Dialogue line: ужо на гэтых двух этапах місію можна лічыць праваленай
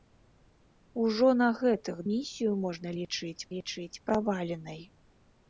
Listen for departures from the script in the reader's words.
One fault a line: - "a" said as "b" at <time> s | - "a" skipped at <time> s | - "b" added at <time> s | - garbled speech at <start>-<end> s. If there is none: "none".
- "двух этапах" skipped at 2.0 s
- "лічыць" added at 3.5 s